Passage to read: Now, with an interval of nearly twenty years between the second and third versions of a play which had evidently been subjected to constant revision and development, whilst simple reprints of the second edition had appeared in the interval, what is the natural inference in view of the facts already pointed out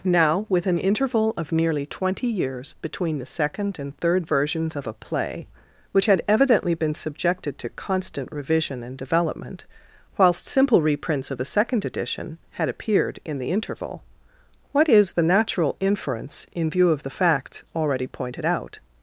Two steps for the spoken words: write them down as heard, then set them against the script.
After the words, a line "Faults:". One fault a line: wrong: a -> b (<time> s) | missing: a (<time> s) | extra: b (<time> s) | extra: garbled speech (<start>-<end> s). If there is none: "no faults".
Now, with an interval of nearly twenty years between the second and third versions of a play which had evidently been subjected to constant revision and development, whilst simple reprints of the second edition had appeared in the interval, what is the natural inference in view of the facts already pointed out
Faults:
no faults